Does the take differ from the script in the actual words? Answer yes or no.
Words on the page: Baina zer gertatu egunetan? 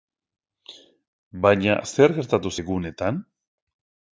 no